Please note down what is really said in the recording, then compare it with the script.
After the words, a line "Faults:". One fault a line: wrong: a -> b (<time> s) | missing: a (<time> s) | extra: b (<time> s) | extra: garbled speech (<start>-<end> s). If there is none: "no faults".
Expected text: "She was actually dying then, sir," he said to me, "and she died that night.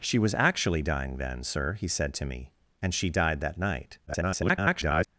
"She was actually dying then, sir," he said to me, "and she died that night. [garbled]
Faults:
extra: garbled speech (4.1-5.1 s)